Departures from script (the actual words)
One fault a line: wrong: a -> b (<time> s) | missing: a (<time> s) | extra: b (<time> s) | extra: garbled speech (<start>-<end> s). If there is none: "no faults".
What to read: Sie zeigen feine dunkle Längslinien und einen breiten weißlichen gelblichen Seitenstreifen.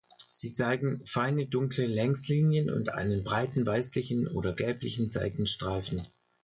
extra: oder (4.3 s)